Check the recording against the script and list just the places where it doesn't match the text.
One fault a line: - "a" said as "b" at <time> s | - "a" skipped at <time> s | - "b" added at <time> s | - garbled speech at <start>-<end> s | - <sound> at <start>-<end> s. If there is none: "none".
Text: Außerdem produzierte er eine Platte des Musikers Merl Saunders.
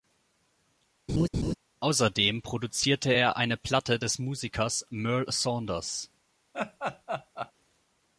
- laugh at 1.1-1.5 s
- laugh at 6.5-7.5 s